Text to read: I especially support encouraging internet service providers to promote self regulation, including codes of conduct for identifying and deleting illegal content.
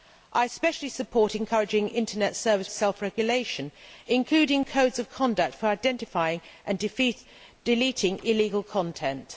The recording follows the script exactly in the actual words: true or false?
false